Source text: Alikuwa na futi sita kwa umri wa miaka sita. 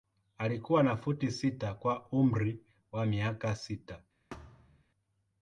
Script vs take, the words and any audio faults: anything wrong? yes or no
yes